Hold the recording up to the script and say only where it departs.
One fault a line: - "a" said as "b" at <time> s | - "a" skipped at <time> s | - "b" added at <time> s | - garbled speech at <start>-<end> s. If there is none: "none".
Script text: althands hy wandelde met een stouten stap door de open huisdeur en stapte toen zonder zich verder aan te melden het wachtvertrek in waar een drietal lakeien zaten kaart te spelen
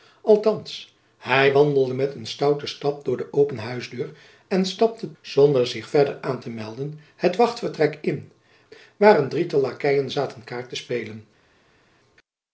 - "toen" skipped at 5.1 s